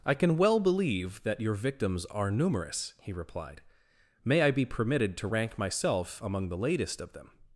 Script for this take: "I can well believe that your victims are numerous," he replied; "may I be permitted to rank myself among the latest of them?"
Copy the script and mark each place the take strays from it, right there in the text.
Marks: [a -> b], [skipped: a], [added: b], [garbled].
"I can well believe that your victims are numerous," he replied; "may I be permitted to rank myself among the latest of them?"